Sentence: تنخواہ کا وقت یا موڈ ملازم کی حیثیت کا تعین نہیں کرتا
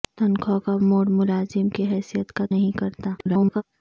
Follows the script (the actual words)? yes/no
no